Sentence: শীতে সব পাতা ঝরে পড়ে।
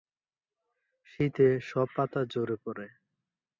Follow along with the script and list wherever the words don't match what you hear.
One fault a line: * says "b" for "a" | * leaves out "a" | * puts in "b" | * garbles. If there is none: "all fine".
all fine